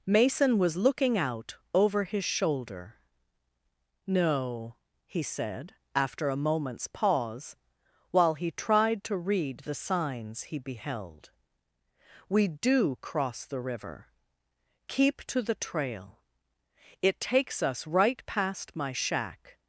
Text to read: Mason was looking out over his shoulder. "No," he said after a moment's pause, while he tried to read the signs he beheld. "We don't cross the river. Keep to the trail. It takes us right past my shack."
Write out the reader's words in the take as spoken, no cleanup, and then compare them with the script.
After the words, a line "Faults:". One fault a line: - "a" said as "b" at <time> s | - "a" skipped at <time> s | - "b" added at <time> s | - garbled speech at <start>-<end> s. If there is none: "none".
Mason was looking out over his shoulder. "No," he said after a moment's pause, while he tried to read the signs he beheld. "We do cross the river. Keep to the trail. It takes us right past my shack."
Faults:
- "don't" said as "do" at 12.5 s